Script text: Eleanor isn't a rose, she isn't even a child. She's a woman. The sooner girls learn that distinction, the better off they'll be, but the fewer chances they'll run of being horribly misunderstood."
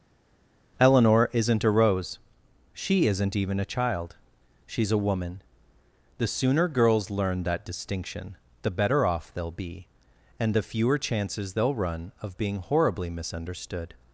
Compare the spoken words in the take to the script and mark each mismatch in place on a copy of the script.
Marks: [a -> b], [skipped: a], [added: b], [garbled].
Eleanor isn't a rose, she isn't even a child. She's a woman. The sooner girls learn that distinction, the better off they'll be, [but -> and] the fewer chances they'll run of being horribly misunderstood."